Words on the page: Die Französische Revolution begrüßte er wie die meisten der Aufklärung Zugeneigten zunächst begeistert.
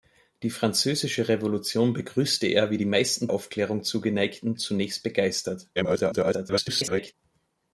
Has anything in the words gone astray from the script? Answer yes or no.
yes